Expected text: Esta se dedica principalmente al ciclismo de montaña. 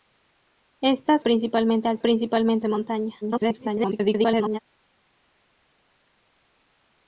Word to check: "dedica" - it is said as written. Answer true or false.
false